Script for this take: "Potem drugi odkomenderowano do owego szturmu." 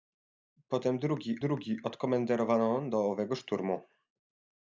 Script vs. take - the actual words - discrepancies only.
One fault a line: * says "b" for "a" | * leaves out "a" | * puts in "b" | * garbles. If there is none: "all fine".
* puts in "drugi"